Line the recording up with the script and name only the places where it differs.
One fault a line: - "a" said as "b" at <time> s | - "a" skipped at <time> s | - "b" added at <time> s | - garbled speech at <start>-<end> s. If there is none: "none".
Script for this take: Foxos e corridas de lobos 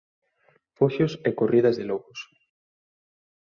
none